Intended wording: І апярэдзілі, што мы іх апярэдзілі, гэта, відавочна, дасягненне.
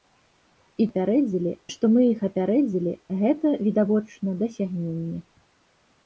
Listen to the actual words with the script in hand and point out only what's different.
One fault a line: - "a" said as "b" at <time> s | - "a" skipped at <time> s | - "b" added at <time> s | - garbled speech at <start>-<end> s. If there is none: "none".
none